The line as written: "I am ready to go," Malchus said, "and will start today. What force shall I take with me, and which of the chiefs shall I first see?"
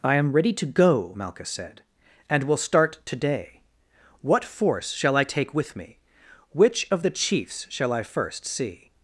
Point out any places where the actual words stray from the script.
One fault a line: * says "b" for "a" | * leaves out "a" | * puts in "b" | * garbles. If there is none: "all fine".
* leaves out "and"